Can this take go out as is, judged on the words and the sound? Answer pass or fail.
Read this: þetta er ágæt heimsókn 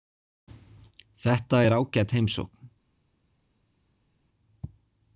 pass